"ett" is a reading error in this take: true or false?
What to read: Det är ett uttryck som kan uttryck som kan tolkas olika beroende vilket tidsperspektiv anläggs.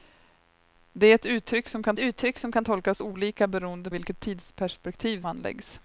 false